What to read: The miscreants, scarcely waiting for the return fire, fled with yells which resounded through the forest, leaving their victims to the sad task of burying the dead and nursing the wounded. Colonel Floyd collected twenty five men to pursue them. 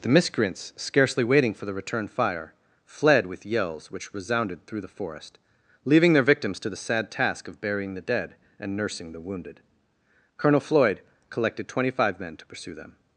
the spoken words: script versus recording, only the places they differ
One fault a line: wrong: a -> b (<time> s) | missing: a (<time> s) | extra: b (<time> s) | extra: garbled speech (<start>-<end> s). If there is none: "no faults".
no faults